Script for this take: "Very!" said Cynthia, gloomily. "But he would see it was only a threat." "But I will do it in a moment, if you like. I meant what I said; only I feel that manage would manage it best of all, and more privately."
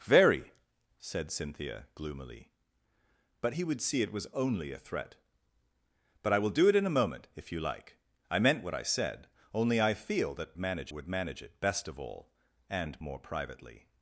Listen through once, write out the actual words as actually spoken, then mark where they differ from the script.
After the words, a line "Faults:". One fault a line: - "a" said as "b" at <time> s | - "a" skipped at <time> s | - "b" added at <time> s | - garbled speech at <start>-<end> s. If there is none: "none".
"Very!" said Cynthia, gloomily. "But he would see it was only a threat." "But I will do it in a moment, if you like. I meant what I said; only I feel that manage would manage it best of all, and more privately."
Faults:
none